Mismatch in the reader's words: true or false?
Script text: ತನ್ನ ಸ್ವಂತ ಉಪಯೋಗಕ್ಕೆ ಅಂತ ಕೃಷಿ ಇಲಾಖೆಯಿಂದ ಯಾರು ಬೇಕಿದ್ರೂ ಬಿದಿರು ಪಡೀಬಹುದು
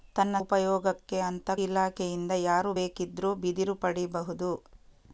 true